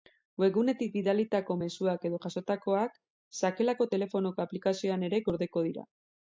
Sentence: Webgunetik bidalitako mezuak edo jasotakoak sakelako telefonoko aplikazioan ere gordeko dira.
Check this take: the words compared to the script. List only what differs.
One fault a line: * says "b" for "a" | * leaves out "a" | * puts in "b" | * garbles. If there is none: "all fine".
all fine